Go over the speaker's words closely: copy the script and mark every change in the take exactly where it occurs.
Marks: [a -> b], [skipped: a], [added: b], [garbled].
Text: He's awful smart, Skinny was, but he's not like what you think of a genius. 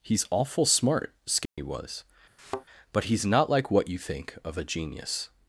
He's awful smart, Skinny was, but he's not like what you think of a genius.